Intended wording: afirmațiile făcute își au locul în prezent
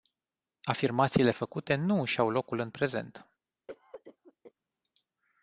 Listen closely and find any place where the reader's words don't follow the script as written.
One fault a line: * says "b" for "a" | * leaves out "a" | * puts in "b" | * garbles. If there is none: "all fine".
* puts in "nu"